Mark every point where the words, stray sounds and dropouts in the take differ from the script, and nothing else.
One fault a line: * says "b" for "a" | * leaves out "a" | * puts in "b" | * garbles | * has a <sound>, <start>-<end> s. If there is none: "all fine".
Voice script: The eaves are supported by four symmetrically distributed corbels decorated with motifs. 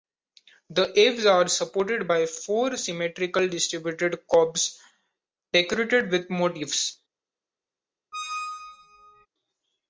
* has a squeak, 8.1-9.3 s